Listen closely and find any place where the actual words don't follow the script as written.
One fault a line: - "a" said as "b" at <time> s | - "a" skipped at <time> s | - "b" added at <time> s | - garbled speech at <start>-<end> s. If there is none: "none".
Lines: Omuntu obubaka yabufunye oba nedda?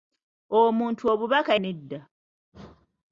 - "yabufunye oba" skipped at 1.5 s